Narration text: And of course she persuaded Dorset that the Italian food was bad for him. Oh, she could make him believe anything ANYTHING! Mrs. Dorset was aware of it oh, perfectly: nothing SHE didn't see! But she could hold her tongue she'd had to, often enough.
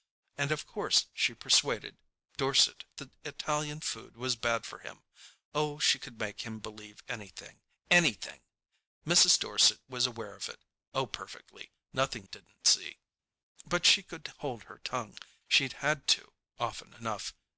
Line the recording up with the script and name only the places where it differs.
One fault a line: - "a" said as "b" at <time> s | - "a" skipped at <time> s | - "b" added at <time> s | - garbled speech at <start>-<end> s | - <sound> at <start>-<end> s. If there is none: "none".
- "that" skipped at 2.9 s
- "SHE" skipped at 12.3 s